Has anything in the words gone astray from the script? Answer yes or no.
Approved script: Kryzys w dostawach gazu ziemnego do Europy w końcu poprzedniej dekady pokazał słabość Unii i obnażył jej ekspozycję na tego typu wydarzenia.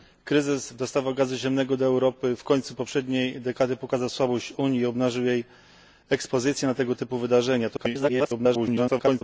yes